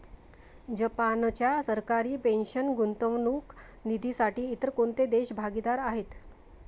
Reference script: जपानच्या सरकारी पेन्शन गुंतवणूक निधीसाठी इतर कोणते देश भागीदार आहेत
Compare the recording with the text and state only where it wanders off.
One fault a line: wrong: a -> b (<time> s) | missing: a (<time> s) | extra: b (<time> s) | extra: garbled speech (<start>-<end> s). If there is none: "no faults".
no faults